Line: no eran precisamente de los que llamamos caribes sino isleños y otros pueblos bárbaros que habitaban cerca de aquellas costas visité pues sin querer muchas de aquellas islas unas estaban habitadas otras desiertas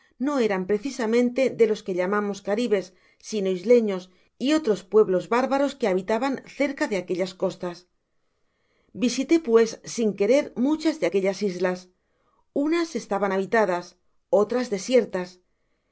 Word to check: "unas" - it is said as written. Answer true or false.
true